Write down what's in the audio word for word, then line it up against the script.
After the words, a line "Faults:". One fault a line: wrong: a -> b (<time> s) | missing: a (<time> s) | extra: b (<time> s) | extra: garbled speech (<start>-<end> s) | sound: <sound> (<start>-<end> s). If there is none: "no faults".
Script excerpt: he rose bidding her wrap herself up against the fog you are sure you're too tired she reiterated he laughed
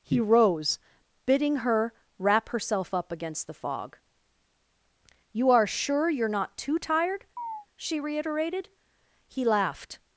he rose bidding her wrap herself up against the fog you are sure you're not too tired she reiterated he laughed
Faults:
extra: not (6.3 s)
sound: chirp (7.4-7.7 s)